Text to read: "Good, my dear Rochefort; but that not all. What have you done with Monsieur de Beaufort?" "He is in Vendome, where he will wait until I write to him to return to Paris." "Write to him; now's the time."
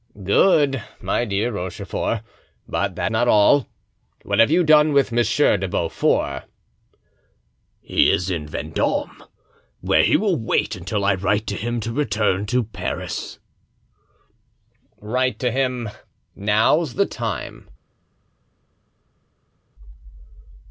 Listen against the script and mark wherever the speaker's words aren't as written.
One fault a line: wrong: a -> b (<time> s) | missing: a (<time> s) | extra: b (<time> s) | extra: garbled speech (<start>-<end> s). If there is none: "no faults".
no faults